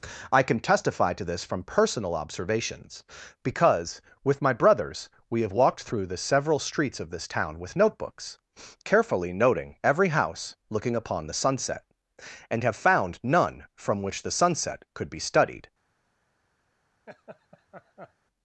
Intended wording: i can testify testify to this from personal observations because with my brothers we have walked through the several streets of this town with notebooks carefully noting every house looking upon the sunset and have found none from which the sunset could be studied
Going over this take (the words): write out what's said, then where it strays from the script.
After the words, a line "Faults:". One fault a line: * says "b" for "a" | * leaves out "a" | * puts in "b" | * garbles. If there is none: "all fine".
i can testify to this from personal observations because with my brothers we have walked through the several streets of this town with notebooks carefully noting every house looking upon the sunset and have found none from which the sunset could be studied
Faults:
* leaves out "testify"